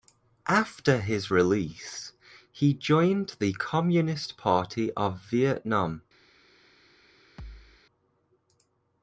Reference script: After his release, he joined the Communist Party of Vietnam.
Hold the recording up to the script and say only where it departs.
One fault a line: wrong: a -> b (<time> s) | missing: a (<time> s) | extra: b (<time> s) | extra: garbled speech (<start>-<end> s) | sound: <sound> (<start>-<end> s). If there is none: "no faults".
sound: thud (7.4-7.8 s)